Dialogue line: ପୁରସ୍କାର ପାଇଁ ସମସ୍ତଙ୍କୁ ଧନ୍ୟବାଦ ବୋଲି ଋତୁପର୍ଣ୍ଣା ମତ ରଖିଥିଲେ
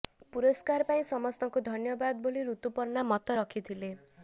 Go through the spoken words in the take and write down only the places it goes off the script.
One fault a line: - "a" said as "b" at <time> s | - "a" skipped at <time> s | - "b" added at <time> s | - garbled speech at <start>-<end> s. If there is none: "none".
none